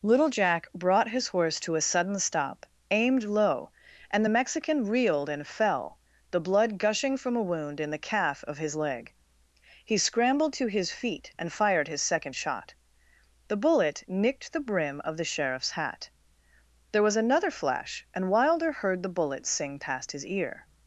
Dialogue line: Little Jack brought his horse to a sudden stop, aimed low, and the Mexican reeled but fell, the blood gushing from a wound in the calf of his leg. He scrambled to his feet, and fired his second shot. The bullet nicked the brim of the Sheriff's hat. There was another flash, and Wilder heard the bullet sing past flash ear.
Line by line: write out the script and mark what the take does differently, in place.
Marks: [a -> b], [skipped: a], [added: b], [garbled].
Little Jack brought his horse to a sudden stop, aimed low, and the Mexican reeled [but -> and] fell, the blood gushing from a wound in the calf of his leg. He scrambled to his feet, and fired his second shot. The bullet nicked the brim of the Sheriff's hat. There was another flash, and Wilder heard the bullet sing past [flash -> his] ear.